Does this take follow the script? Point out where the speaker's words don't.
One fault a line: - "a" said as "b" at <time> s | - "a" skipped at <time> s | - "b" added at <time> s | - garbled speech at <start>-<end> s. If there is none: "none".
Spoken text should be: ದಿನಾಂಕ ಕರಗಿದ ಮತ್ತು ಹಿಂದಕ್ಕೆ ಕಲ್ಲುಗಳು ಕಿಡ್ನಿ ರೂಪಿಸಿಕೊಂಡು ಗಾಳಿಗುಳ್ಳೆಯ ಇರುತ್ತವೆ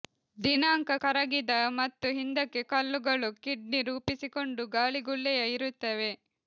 none